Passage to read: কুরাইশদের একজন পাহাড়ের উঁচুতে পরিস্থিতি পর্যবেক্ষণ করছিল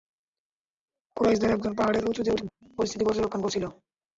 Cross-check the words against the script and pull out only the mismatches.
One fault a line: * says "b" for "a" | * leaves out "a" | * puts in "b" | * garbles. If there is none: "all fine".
* puts in "উঠে"